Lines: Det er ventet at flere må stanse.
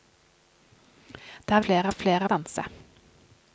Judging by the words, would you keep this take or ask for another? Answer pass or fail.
fail